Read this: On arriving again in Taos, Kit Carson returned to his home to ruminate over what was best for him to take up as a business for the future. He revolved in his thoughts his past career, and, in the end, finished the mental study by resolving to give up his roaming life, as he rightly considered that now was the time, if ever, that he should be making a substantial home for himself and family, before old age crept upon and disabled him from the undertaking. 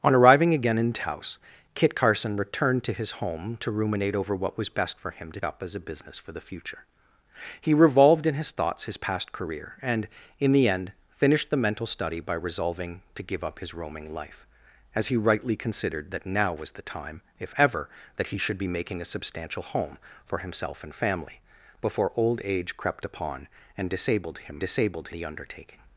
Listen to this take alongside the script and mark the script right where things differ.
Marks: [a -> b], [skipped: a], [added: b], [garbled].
On arriving again in Taos, Kit Carson returned to his home to ruminate over what was best for him to [skipped: take] up as a business for the future. He revolved in his thoughts his past career, and, in the end, finished the mental study by resolving to give up his roaming life, as he rightly considered that now was the time, if ever, that he should be making a substantial home for himself and family, before old age crept upon and disabled him [from -> disabled] the undertaking.